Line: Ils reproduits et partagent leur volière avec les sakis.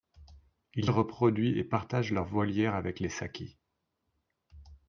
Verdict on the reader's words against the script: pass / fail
pass